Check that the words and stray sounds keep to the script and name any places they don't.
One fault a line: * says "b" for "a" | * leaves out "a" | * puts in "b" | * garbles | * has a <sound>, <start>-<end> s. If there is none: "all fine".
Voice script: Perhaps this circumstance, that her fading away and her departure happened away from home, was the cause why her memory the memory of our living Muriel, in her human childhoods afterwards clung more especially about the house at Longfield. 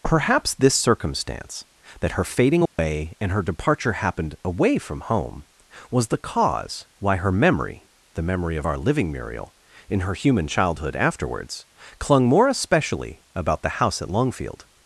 * has a dropout, 2.7-2.8 s
* says "childhood" for "childhoods"